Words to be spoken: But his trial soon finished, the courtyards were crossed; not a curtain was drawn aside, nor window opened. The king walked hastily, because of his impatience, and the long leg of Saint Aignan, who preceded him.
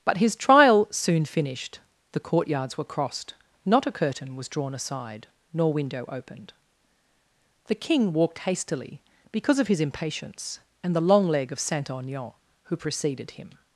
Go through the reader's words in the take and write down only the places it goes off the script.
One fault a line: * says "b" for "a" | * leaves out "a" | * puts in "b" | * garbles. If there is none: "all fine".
all fine